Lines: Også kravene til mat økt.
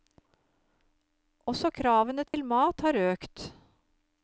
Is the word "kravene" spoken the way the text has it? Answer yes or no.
yes